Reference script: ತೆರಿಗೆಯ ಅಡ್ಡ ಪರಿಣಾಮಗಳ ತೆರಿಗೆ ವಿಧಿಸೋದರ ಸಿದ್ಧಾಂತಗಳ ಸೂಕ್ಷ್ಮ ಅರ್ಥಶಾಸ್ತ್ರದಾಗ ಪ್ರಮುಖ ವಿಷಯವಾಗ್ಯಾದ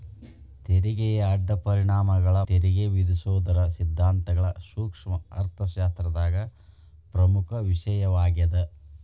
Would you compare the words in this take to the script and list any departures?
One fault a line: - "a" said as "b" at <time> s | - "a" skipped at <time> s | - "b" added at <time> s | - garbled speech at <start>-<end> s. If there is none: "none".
none